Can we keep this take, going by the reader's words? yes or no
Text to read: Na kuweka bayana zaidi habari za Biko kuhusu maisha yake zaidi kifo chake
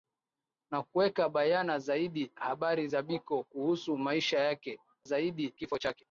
yes